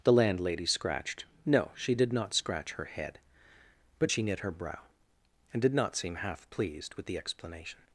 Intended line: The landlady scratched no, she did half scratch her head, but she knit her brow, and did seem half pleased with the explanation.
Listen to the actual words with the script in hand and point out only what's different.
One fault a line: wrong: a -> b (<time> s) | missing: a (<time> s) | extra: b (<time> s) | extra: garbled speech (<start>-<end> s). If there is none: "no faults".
wrong: half -> not (2.1 s)
extra: not (5.7 s)